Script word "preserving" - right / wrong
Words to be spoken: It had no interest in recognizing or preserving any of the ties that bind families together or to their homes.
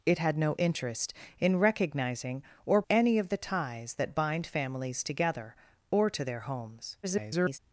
wrong